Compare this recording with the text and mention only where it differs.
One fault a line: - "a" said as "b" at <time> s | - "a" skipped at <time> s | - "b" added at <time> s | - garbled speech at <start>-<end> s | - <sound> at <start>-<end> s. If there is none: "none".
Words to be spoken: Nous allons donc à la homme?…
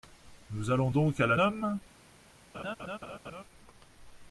- laugh at 2.5-3.4 s